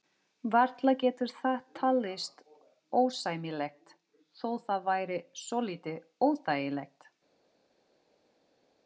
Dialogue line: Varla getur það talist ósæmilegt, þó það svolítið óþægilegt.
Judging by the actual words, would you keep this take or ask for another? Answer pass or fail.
fail